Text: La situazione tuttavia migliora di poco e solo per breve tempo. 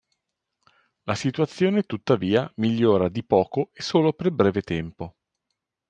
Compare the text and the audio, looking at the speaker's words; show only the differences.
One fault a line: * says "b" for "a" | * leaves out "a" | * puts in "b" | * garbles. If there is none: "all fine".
all fine